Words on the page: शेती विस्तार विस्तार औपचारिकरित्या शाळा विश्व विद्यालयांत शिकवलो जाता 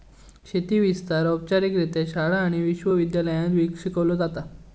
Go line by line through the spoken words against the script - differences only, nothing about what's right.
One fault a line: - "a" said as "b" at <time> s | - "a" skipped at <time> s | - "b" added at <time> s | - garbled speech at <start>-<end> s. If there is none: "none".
- "विस्तार" skipped at 1.2 s
- "आणि" added at 2.4 s